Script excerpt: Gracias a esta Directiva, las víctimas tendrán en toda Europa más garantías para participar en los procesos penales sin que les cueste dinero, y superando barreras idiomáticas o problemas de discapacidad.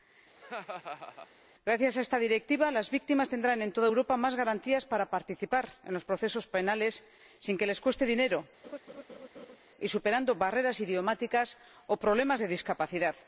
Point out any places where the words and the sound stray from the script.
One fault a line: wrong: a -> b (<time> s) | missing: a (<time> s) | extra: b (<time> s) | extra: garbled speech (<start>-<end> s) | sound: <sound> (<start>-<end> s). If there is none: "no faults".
sound: laugh (0.4-1.3 s)
sound: laugh (8.6-9.6 s)